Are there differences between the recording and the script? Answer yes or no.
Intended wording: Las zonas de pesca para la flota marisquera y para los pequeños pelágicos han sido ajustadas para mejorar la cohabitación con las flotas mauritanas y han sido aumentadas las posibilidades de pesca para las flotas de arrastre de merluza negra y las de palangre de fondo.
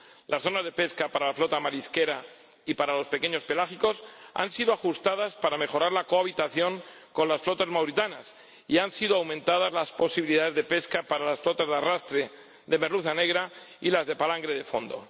no